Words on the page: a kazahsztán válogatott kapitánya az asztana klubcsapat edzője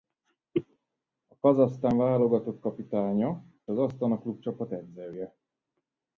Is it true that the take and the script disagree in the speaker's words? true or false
false